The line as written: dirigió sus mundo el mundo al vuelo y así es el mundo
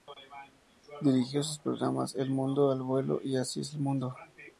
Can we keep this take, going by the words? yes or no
no